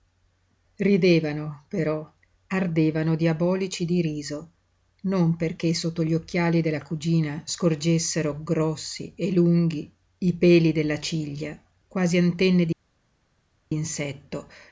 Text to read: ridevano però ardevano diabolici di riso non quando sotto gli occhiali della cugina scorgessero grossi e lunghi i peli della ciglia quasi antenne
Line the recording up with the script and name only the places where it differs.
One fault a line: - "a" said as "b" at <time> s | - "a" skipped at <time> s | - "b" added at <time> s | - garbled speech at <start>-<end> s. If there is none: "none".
- "quando" said as "perché" at 5.3 s